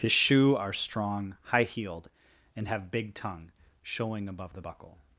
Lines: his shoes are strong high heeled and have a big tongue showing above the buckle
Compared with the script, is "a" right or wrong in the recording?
wrong